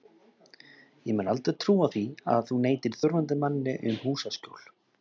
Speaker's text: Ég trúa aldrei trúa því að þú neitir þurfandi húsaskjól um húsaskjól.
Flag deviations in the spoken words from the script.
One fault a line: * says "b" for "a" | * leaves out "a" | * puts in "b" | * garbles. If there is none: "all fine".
* says "mun" for "trúa"
* says "manni" for "húsaskjól"